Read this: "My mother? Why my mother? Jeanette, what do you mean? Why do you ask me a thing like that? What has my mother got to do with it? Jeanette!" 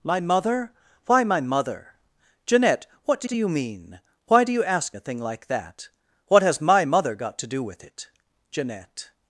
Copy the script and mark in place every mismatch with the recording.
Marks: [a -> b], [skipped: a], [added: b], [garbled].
"My mother? Why my mother? Jeanette, what do [added: do] you mean? Why do you ask [skipped: me] a thing like that? What has my mother got to do with it? Jeanette!"